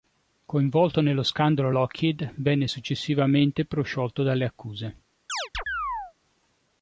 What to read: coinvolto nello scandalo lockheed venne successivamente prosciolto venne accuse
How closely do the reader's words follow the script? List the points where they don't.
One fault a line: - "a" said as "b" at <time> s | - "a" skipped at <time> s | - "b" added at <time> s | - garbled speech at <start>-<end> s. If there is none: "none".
- "venne" said as "dalle" at 4.2 s